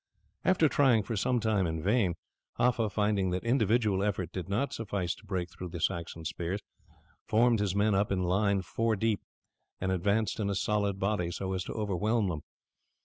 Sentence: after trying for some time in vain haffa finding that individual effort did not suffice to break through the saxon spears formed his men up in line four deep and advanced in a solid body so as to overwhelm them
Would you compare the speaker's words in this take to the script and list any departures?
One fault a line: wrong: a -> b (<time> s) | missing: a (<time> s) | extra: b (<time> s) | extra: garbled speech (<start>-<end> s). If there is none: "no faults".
no faults